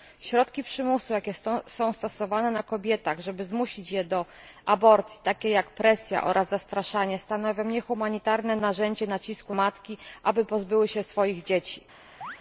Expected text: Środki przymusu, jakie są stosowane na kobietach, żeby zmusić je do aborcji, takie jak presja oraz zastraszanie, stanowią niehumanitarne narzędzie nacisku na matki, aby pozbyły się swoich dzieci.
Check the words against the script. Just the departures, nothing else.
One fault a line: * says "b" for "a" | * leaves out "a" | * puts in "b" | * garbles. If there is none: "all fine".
* leaves out "na"